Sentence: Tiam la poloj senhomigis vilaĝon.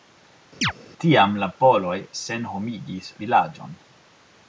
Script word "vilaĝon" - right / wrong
right